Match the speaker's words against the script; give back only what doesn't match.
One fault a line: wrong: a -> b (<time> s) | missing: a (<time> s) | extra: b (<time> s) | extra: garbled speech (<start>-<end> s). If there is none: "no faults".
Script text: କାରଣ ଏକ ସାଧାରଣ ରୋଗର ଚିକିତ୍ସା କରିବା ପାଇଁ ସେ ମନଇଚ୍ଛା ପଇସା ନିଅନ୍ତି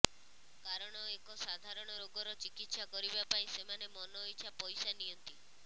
wrong: ସେ -> ସେମାନେ (3.6 s)